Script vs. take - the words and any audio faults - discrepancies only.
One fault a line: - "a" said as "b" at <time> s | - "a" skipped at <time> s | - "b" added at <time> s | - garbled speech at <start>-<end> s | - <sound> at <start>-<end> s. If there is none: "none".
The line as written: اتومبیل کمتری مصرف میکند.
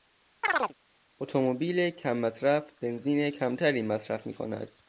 - chirp at 0.4-0.7 s
- "کم مصرف بنزین" added at 1.9 s